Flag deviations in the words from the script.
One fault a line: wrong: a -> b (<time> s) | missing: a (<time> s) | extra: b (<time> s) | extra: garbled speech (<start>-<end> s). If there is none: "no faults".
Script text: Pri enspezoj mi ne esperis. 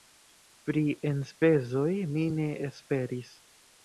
no faults